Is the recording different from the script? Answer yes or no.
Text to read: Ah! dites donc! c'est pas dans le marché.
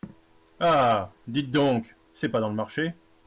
no